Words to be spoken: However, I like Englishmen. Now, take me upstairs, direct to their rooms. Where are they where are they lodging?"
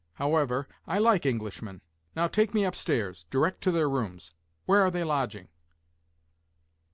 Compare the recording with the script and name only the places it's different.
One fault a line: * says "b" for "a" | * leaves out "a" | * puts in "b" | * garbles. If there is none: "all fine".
* leaves out "where are they"